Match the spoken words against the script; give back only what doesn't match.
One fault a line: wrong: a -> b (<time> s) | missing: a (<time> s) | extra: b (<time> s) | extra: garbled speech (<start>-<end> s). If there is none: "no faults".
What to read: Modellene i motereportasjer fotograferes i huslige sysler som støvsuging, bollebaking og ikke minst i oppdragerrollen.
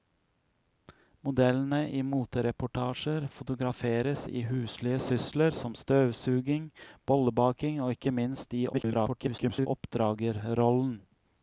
extra: garbled speech (8.7-9.7 s)